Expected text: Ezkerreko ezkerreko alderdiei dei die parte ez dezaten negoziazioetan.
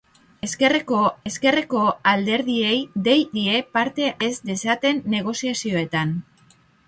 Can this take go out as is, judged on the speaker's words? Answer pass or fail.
pass